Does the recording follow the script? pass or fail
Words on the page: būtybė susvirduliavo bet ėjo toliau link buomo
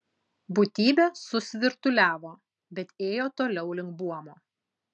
pass